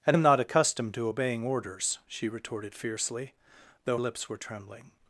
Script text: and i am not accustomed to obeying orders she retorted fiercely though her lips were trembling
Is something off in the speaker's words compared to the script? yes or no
yes